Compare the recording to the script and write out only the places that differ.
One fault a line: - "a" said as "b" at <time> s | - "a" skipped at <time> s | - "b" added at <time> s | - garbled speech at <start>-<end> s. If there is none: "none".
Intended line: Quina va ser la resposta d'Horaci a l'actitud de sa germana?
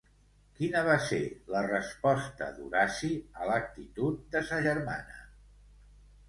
none